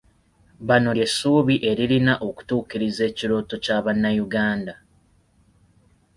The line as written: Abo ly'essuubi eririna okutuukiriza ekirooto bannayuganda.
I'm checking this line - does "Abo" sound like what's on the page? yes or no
no